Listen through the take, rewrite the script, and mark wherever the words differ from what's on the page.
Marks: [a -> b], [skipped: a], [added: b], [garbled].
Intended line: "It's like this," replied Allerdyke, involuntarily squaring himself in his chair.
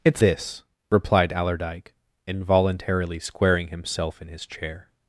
"It's [skipped: like] this," replied Allerdyke, involuntarily squaring himself in his chair.